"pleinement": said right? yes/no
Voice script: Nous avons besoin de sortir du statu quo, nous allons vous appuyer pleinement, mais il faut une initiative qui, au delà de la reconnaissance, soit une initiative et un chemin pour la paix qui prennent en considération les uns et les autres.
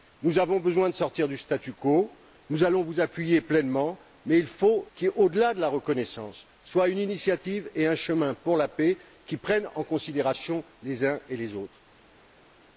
yes